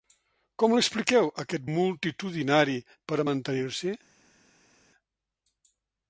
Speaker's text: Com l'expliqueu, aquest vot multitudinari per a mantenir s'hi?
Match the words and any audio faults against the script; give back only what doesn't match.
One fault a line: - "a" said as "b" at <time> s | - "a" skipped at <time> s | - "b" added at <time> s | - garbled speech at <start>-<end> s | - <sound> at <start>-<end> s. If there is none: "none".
- "vot" skipped at 1.7 s